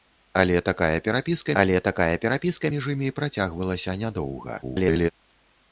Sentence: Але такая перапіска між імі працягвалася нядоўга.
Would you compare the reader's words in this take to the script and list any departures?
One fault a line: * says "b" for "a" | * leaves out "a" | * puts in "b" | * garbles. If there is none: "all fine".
* puts in "але такая перапіска"
* garbles